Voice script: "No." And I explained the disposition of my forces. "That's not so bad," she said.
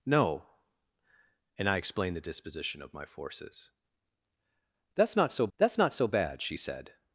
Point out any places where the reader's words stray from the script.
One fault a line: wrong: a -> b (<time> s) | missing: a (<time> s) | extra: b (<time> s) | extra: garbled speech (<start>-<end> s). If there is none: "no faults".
extra: that's not so (5.6 s)